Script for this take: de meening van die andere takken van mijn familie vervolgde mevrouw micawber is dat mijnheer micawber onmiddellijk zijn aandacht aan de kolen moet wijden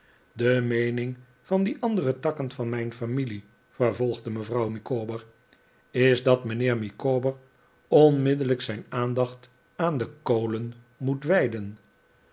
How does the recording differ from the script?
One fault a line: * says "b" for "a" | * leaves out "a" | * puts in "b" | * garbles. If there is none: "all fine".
all fine